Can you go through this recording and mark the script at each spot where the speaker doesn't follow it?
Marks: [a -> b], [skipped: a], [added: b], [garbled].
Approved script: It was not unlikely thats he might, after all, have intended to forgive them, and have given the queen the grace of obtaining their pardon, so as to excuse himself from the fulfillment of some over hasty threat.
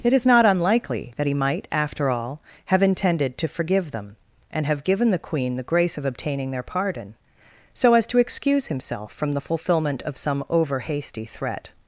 It [was -> is] not unlikely [thats -> that] he might, after all, have intended to forgive them, and have given the queen the grace of obtaining their pardon, so as to excuse himself from the fulfillment of some over hasty threat.